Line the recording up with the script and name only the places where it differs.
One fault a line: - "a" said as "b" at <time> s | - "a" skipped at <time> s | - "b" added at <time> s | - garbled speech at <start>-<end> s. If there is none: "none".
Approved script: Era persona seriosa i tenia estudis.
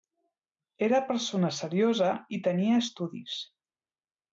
none